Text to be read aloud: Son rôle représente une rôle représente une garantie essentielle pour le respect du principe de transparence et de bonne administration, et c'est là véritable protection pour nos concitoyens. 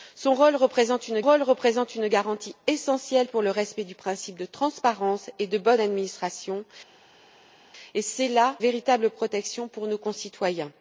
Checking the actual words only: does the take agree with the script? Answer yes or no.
yes